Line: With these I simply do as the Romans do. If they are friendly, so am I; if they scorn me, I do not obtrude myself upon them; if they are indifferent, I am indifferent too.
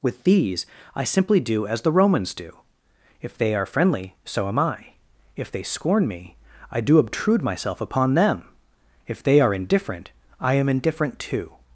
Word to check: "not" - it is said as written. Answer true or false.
false